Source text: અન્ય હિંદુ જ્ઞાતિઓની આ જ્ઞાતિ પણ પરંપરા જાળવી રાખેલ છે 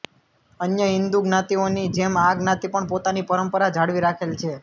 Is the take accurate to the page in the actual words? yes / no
no